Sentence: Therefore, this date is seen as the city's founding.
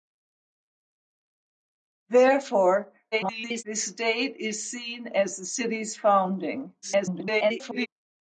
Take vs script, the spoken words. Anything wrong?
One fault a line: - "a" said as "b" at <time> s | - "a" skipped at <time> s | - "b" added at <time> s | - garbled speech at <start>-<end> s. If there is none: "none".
- garbled speech at 3.1-3.6 s
- garbled speech at 6.8-7.9 s